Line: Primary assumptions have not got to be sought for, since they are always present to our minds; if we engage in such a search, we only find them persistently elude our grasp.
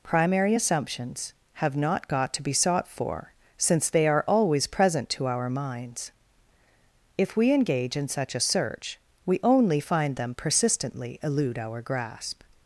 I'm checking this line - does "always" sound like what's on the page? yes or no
yes